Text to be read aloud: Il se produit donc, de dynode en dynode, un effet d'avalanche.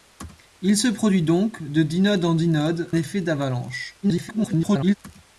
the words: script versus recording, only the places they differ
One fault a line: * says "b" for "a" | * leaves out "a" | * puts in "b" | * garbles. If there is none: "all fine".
* leaves out "un"
* garbles